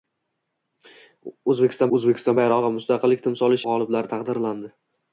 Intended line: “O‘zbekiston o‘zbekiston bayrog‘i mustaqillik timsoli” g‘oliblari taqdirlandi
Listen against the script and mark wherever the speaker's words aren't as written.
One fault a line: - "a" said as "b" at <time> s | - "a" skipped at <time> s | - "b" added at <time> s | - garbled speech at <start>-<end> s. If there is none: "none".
none